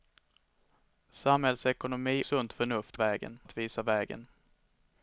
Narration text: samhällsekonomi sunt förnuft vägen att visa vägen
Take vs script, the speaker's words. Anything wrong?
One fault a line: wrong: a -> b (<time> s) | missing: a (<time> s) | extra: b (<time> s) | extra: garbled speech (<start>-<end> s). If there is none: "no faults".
no faults